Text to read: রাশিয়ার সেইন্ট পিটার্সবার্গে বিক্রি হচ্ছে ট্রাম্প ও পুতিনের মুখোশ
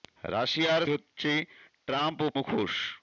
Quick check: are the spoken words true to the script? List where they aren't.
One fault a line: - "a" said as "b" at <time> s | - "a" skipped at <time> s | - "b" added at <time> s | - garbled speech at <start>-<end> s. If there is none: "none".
- "সেইন্ট পিটার্সবার্গে বিক্রি" skipped at 0.8 s
- "পুতিনের" skipped at 2.3 s